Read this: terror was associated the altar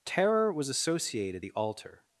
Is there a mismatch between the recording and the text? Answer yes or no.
no